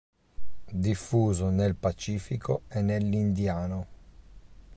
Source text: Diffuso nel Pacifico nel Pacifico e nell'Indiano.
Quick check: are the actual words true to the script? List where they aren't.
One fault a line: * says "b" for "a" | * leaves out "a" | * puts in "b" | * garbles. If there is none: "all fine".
* leaves out "nel Pacifico"